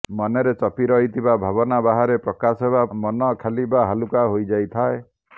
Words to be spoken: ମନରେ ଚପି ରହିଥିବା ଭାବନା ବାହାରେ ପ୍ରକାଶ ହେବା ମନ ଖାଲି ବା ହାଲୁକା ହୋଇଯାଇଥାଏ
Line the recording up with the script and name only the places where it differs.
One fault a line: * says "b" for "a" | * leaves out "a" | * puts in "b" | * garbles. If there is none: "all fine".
all fine